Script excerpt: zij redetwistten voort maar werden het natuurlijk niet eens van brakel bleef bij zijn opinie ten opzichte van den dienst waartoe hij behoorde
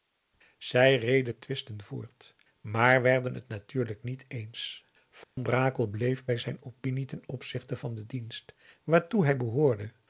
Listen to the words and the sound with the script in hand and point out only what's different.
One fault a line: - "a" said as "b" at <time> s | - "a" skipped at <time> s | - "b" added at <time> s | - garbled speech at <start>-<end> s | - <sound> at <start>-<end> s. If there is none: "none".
- dropout at 5.2-5.4 s